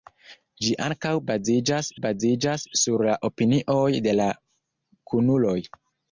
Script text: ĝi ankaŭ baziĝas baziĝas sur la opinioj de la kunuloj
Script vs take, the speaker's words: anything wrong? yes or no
no